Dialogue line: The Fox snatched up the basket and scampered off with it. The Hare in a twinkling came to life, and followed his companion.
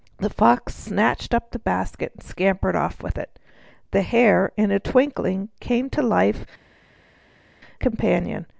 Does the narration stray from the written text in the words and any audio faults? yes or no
yes